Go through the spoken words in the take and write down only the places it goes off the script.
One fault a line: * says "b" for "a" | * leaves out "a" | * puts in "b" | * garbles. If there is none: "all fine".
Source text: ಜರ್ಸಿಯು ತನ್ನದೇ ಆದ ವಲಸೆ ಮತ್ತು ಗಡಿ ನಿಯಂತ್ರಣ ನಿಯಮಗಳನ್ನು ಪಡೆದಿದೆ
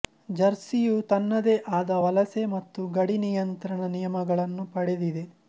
all fine